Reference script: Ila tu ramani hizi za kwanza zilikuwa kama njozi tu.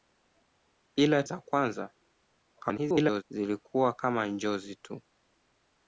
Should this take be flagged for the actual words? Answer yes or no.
yes